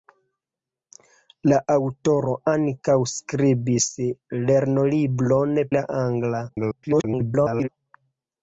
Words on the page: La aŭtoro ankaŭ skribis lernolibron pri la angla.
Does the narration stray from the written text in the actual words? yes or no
yes